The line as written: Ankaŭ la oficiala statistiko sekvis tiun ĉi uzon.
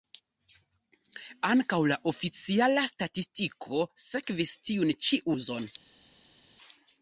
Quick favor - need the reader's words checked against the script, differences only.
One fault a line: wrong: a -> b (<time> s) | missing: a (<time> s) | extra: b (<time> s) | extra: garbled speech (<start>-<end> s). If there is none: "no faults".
no faults